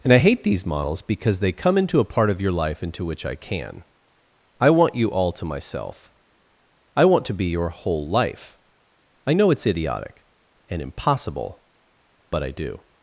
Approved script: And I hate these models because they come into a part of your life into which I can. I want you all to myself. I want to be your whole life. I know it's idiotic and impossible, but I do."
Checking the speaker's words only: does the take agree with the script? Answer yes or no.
yes